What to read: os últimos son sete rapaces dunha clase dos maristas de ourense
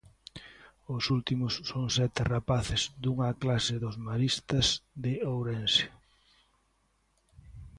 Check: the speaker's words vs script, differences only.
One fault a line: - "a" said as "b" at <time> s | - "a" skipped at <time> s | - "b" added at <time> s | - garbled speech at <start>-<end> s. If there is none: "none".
none